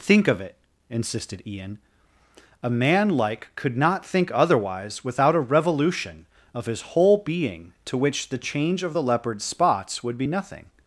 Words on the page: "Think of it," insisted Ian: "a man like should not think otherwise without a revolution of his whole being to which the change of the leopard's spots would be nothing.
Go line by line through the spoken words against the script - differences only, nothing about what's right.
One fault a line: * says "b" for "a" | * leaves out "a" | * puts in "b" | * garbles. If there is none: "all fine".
* says "could" for "should"